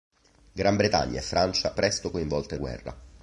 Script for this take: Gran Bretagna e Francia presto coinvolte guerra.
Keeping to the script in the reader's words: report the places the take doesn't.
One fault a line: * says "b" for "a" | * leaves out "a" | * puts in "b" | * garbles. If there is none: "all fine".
all fine